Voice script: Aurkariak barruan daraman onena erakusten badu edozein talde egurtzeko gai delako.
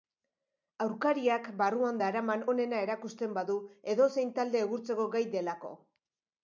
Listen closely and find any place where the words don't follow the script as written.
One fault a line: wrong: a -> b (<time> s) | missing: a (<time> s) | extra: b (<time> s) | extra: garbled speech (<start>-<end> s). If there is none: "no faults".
no faults